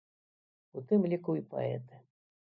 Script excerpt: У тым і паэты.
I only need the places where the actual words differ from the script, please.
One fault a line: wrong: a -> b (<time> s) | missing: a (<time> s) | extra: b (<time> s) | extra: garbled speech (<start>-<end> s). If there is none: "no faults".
extra: ліку (1.1 s)